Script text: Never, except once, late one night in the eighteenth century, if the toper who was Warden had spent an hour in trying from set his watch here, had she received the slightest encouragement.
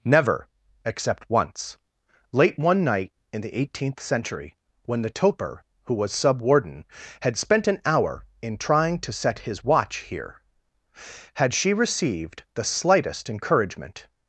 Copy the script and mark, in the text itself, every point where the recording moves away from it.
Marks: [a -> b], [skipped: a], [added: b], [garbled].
Never, except once, late one night in the eighteenth century, [if -> when] the toper who was [added: Sub] Warden had spent an hour in trying [from -> to] set his watch here, had she received the slightest encouragement.